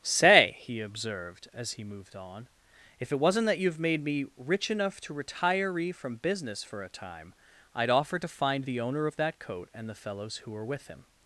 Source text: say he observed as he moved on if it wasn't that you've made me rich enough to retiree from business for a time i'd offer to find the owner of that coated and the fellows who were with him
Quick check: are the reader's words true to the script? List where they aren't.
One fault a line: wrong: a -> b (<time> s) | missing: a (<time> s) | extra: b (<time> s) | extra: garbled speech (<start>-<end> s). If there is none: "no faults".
wrong: coated -> coat (9.4 s)